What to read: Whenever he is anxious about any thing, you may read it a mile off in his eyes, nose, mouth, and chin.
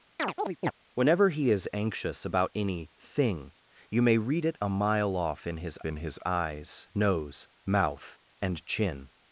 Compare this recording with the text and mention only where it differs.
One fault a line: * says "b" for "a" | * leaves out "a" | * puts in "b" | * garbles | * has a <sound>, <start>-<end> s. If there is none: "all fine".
* has a chirp, 0.2-0.7 s
* puts in "in his"